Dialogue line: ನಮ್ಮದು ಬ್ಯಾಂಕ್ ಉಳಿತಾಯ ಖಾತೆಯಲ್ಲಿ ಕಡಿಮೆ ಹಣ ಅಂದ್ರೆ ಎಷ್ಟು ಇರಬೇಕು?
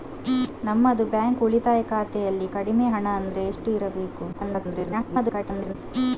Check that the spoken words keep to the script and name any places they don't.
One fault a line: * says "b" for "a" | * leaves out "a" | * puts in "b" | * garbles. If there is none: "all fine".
* garbles